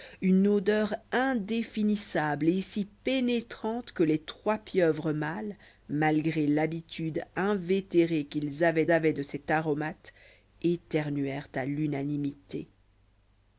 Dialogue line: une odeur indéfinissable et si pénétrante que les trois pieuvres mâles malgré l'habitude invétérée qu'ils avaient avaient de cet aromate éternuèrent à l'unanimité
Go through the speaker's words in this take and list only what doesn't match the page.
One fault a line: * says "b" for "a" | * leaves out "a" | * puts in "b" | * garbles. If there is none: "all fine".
all fine